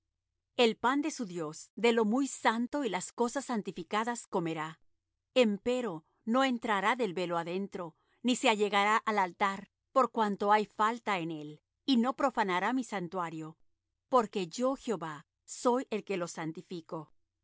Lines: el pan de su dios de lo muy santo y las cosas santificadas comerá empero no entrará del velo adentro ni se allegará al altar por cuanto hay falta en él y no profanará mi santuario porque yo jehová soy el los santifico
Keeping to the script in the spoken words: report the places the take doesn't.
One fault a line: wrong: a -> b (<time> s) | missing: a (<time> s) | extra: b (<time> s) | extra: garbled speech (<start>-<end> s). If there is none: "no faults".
extra: que (16.0 s)